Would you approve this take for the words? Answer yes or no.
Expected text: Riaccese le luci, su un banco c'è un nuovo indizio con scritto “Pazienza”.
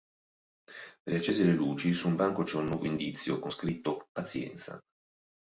yes